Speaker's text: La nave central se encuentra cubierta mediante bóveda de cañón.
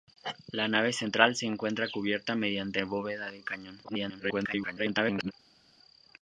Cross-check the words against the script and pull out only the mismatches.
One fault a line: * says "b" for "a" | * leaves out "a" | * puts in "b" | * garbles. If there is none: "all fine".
* garbles